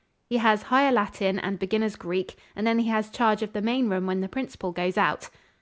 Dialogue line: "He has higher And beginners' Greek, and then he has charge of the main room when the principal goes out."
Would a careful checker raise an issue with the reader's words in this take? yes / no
yes